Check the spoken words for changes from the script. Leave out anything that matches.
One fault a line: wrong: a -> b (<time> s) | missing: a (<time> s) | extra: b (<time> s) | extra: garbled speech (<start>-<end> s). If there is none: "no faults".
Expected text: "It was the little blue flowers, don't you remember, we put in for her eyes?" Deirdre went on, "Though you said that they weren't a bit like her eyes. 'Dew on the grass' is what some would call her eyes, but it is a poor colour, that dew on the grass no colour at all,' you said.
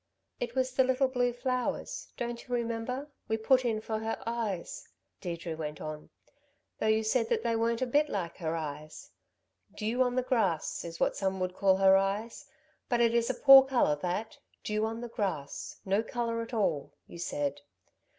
no faults